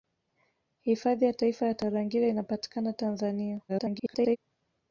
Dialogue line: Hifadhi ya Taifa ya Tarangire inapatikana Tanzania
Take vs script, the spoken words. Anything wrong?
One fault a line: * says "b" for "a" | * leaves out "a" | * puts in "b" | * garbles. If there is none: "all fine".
* garbles